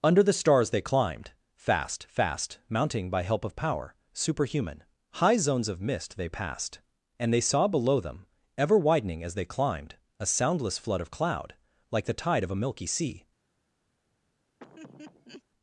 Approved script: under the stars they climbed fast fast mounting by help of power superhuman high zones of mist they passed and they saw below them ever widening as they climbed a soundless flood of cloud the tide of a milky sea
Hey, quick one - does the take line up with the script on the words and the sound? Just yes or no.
no